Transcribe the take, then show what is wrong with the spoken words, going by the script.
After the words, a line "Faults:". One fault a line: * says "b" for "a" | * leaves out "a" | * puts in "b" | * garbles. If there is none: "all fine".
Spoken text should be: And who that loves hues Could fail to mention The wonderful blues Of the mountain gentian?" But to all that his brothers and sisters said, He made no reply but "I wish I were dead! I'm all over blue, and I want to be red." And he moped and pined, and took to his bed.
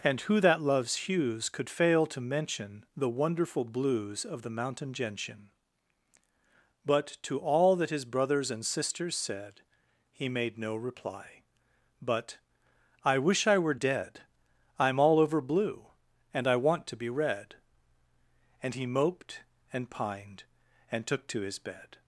And who that loves hues Could fail to mention The wonderful blues Of the mountain gentian?" But to all that his brothers and sisters said, He made no reply but "I wish I were dead! I'm all over blue, and I want to be red." And he moped and pined, and took to his bed.
Faults:
all fine